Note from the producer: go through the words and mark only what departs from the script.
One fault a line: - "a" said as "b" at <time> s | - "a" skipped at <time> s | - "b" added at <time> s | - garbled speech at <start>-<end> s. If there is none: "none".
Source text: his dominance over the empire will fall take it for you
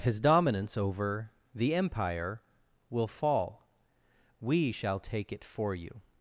- "we shall" added at 4.4 s